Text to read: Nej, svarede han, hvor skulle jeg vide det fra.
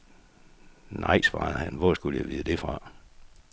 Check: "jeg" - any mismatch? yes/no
no